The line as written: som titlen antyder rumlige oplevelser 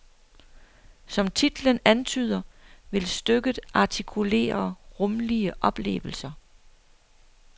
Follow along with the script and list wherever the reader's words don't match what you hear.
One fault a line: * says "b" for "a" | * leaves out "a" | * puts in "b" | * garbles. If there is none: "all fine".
* puts in "vil stykket artikulere"